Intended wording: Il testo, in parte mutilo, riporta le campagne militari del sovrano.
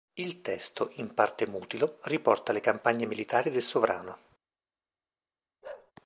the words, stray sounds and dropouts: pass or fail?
fail